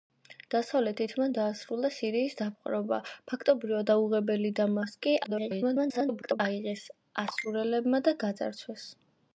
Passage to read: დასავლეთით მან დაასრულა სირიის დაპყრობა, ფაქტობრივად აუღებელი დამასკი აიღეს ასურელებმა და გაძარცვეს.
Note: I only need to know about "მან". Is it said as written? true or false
true